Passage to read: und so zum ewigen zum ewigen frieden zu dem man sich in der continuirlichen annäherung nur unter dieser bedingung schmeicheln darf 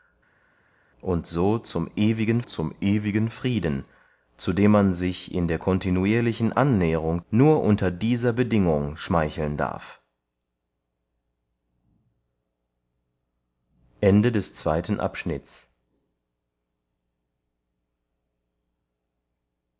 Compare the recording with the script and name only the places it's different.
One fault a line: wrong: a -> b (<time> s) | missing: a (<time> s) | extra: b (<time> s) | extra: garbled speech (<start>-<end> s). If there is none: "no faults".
no faults